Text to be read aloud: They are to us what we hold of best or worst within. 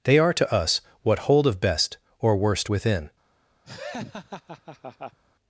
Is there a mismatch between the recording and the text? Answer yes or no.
yes